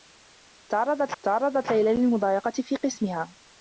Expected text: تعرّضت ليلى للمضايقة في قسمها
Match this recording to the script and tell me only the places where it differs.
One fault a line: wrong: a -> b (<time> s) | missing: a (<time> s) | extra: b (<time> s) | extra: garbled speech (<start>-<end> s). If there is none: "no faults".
extra: تعرّضت (1.2 s)